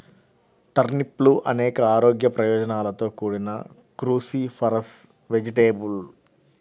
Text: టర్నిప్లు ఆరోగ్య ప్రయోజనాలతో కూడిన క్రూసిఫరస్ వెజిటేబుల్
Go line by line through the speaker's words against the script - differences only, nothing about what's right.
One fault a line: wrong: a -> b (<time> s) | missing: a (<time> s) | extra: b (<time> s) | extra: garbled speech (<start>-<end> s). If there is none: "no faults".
extra: అనేక (1.4 s)